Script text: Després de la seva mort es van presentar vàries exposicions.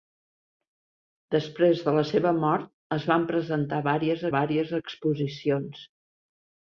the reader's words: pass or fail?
fail